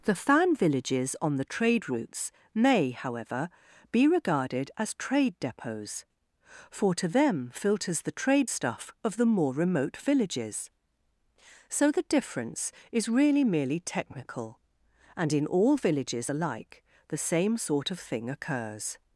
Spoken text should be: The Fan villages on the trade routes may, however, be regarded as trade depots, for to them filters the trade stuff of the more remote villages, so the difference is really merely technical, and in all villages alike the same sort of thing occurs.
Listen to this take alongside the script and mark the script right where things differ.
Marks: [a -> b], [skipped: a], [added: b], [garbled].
The Fan villages on the trade routes may, however, be regarded as trade depots, for to them filters the trade stuff of the more remote villages, so the difference is really merely technical, and in all villages alike the same sort of thing occurs.